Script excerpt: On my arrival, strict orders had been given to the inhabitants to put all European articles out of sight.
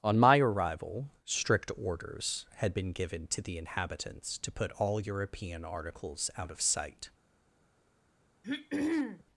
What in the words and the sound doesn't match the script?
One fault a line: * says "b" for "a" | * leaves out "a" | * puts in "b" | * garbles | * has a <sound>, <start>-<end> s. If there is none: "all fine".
* has a throat clearing, 8.4-9.2 s